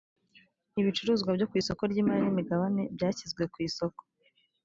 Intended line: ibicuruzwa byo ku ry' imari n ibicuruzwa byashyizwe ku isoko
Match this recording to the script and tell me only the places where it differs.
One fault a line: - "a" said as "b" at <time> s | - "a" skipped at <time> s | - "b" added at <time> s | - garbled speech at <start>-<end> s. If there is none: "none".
- "isoko" added at 1.6 s
- "ibicuruzwa" said as "imigabane" at 2.3 s